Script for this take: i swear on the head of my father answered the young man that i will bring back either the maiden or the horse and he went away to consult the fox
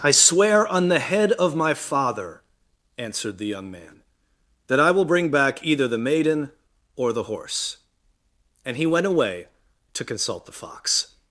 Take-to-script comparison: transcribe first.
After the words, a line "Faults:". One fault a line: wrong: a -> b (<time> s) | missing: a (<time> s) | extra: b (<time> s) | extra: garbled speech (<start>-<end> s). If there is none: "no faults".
i swear on the head of my father answered the young man that i will bring back either the maiden or the horse and he went away to consult the fox
Faults:
no faults